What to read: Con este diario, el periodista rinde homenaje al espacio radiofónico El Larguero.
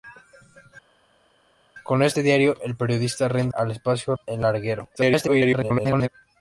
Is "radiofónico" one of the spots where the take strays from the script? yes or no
yes